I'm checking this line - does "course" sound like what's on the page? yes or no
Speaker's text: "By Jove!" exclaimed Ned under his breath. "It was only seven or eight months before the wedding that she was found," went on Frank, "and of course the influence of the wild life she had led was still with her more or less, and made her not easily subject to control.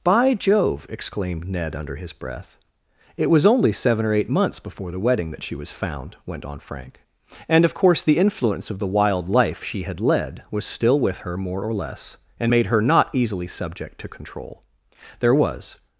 yes